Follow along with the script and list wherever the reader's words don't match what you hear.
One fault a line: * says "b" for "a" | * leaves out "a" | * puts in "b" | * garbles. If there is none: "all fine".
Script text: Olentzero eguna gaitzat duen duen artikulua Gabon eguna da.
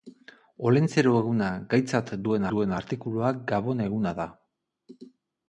all fine